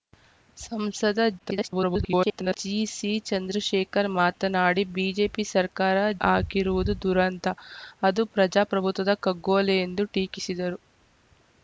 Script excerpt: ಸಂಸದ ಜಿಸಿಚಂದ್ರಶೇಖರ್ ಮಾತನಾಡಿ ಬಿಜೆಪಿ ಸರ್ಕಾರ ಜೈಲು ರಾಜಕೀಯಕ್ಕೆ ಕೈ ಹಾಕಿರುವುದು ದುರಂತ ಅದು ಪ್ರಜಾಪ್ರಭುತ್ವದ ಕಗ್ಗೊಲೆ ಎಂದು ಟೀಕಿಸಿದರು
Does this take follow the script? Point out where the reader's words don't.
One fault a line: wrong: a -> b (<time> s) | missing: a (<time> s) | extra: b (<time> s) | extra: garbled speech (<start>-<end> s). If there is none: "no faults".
extra: garbled speech (1.4-2.6 s)
missing: ಜೈಲು ರಾಜಕೀಯಕ್ಕೆ ಕೈ (6.0 s)